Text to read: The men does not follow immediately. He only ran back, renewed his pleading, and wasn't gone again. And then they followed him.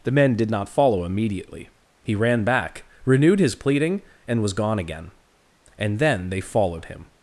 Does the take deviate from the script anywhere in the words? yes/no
yes